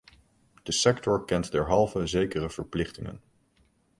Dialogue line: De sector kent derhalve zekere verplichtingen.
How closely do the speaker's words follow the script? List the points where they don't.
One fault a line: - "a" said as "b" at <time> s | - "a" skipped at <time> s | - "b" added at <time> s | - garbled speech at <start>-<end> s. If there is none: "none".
none